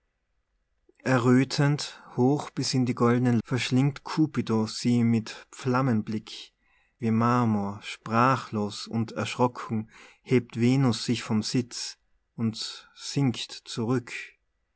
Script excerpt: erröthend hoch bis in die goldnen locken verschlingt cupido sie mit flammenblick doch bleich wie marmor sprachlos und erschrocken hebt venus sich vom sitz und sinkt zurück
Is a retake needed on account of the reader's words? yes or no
yes